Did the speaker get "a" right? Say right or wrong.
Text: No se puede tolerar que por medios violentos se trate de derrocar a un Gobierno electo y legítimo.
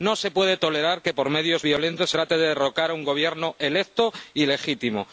right